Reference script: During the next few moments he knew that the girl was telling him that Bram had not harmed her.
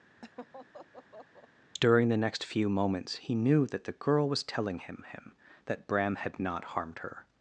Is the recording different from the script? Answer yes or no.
yes